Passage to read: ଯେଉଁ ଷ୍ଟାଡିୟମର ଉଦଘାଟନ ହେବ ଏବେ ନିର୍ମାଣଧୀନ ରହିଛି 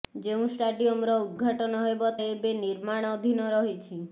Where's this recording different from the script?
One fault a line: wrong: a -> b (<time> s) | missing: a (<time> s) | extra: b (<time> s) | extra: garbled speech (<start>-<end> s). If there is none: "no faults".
no faults